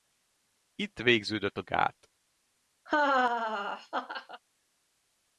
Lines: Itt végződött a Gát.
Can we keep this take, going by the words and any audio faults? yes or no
no